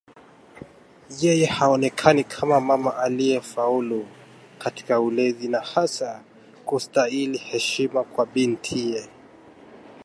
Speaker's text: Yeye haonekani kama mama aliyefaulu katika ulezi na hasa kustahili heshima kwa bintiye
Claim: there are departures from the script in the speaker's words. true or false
false